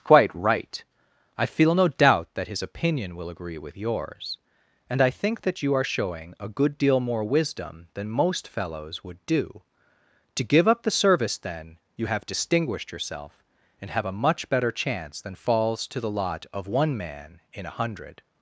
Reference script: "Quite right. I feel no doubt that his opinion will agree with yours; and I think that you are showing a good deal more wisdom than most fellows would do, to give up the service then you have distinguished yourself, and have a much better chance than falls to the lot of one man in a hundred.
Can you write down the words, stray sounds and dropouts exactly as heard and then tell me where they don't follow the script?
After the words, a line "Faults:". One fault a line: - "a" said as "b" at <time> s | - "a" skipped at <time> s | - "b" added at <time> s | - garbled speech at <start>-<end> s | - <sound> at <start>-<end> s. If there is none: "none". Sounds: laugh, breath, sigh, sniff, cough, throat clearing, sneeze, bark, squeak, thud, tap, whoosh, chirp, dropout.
"Quite right. I feel no doubt that his opinion will agree with yours; and I think that you are showing a good deal more wisdom than most fellows would do, to give up the service then you have distinguished yourself, and have a much better chance than falls to the lot of one man in a hundred.
Faults:
none